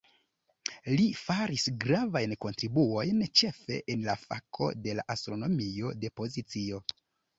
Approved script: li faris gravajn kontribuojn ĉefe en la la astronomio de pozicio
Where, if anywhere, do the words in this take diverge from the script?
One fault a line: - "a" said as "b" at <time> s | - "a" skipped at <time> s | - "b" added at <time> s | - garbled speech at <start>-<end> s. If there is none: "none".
- "fako de" added at 4.2 s